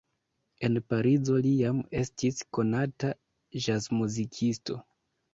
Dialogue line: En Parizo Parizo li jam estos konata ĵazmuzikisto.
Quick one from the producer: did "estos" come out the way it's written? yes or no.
no